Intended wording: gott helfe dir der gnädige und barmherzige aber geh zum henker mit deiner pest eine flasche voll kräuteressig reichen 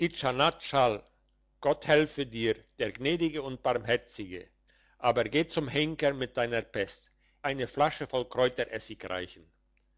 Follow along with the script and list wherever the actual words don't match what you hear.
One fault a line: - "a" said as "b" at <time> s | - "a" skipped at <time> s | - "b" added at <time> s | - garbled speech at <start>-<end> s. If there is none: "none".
none